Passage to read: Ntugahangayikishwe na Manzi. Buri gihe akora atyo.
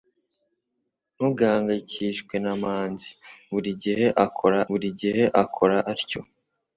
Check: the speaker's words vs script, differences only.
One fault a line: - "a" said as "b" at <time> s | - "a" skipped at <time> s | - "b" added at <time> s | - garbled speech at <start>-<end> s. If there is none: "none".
- "buri gihe akora" added at 4.7 s